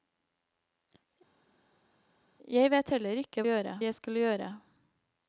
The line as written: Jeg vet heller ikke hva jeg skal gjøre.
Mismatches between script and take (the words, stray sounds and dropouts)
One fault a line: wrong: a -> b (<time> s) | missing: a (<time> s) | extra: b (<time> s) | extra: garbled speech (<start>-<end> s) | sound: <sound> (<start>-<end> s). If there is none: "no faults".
wrong: hva -> gjøre (3.5 s)